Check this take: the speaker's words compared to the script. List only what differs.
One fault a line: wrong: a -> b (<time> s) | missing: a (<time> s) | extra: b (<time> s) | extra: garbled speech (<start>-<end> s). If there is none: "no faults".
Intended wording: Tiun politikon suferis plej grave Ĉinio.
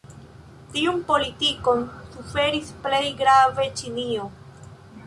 no faults